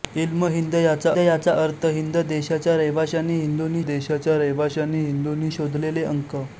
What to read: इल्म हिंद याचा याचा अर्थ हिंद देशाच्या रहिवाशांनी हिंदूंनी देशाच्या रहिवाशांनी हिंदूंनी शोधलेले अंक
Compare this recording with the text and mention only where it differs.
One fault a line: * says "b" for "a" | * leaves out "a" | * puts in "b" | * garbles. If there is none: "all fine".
all fine